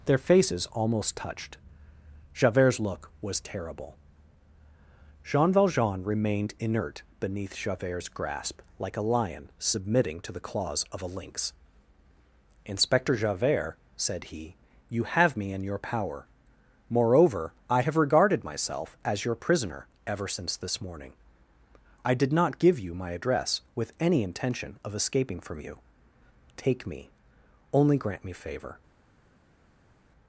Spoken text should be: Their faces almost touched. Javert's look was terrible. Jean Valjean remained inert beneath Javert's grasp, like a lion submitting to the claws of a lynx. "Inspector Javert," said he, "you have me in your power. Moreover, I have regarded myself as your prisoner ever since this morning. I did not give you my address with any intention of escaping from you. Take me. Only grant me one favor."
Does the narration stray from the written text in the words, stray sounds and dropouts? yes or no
yes